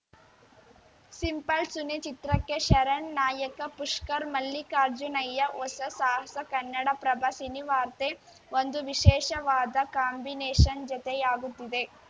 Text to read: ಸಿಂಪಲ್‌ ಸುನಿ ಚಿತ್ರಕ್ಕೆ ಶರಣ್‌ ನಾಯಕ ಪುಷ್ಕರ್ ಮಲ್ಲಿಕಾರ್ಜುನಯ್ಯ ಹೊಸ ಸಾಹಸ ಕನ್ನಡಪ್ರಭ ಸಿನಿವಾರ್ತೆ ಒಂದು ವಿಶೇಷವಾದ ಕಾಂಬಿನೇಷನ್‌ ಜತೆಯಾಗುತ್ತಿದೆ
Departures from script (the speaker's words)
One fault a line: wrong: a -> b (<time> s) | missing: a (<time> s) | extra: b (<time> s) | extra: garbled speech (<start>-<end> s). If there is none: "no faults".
no faults